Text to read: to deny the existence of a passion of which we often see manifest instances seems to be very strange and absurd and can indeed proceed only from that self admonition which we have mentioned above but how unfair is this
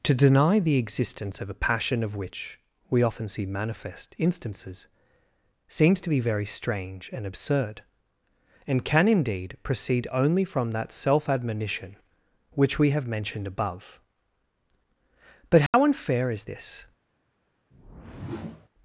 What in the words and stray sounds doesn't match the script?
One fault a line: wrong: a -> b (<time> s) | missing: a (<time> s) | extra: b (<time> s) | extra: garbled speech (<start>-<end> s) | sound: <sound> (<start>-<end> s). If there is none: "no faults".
sound: dropout (15.7-15.7 s)
sound: whoosh (17.7-18.7 s)